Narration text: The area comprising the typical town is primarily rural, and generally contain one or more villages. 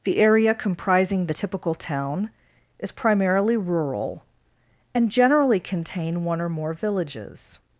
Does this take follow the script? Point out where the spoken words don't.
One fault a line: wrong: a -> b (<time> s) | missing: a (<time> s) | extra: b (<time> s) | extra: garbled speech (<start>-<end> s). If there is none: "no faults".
no faults